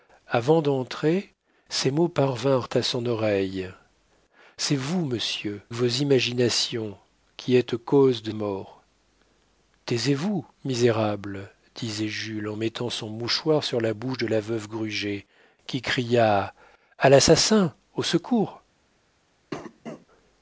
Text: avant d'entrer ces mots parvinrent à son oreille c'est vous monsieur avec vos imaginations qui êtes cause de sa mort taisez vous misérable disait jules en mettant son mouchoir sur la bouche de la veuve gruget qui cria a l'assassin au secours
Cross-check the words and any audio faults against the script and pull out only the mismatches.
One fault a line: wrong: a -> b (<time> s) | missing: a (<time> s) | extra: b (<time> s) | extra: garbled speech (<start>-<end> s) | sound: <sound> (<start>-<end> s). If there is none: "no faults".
missing: avec (5.6 s)
missing: sa (8.3 s)
sound: cough (19.5-20.1 s)